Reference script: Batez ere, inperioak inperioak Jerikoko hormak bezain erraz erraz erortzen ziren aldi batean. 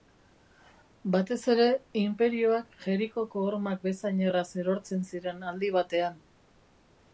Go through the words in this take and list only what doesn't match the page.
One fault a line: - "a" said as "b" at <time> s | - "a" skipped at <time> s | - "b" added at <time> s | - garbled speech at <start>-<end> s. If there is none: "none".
- "inperioak" skipped at 2.8 s
- "erraz" skipped at 4.5 s